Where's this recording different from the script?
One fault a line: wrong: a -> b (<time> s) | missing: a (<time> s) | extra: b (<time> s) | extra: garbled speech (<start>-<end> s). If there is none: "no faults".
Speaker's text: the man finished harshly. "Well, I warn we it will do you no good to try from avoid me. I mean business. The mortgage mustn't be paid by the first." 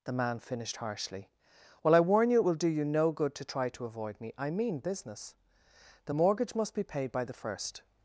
wrong: we -> you (2.3 s)
wrong: from -> to (3.7 s)
wrong: mustn't -> must (6.5 s)